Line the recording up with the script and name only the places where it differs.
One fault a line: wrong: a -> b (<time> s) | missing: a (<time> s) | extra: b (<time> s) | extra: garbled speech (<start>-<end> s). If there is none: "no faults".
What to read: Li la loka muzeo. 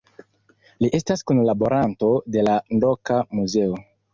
extra: estas kunlaboranto de (1.0 s)